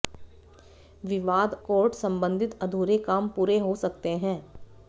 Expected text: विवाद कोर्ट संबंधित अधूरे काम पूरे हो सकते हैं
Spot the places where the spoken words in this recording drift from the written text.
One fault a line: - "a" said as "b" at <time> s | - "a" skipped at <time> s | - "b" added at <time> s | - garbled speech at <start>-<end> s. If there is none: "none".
none